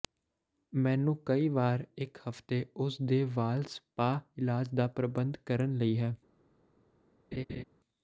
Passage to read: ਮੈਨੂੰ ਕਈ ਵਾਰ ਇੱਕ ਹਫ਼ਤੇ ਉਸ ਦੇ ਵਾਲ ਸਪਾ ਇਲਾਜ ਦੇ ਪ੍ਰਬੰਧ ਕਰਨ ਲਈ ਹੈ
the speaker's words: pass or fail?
fail